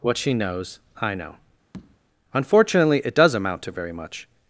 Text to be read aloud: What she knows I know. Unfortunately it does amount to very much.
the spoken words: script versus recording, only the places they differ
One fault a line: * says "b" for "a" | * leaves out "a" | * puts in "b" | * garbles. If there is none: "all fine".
all fine